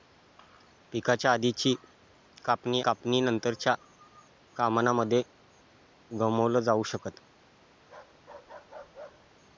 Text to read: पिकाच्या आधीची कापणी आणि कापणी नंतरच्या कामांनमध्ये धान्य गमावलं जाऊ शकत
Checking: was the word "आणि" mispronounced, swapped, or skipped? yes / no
yes